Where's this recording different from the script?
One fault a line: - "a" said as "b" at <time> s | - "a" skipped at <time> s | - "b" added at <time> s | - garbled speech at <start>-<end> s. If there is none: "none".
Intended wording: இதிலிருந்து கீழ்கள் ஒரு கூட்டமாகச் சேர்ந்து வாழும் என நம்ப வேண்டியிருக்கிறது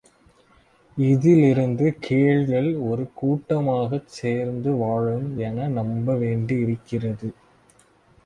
none